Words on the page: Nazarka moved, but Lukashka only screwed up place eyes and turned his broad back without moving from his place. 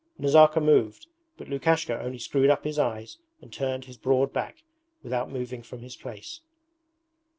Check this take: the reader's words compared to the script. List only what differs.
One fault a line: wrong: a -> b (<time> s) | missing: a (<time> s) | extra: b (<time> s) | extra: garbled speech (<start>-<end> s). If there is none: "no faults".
wrong: place -> his (2.6 s)